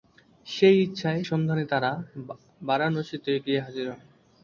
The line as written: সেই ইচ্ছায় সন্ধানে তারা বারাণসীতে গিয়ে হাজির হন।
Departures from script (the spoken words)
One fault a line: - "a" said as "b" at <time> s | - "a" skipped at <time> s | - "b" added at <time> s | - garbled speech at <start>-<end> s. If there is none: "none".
none